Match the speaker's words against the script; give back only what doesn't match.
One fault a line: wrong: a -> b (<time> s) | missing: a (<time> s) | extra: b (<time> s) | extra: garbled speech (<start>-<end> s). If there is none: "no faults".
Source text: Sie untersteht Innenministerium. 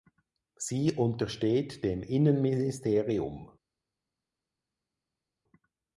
extra: dem (1.8 s)